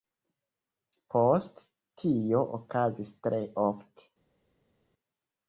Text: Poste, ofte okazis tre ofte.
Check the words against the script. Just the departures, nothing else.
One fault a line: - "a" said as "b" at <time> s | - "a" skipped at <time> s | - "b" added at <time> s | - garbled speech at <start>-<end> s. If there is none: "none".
- "ofte" said as "tio" at 2.0 s